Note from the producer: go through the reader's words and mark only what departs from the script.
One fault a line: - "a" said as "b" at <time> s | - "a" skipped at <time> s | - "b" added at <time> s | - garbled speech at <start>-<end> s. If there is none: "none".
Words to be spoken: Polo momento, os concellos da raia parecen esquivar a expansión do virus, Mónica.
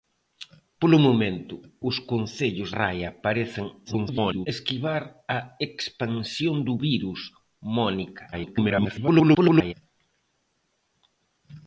- "da" skipped at 2.7 s
- garbled speech at 3.9-4.5 s
- garbled speech at 8.3-9.7 s